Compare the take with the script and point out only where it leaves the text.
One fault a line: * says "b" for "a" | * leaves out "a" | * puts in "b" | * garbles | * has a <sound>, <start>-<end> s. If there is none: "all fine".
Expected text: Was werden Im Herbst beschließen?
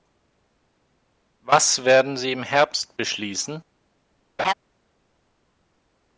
* puts in "Sie"
* has a laugh, 4.4-4.5 s